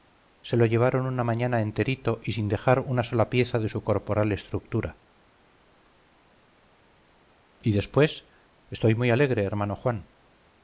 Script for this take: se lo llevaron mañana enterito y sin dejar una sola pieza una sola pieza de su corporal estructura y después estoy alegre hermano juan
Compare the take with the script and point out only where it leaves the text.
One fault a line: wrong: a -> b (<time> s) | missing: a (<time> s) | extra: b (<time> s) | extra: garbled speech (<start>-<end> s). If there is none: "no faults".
extra: una (1.1 s)
missing: una sola pieza (3.6 s)
extra: muy (8.9 s)